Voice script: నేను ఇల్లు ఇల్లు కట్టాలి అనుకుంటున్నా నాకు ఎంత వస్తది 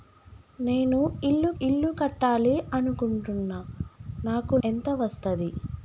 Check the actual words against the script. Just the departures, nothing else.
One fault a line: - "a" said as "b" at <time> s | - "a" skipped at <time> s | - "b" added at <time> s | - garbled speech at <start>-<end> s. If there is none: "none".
none